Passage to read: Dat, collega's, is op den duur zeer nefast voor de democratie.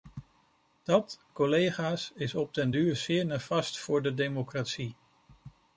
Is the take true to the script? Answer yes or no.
yes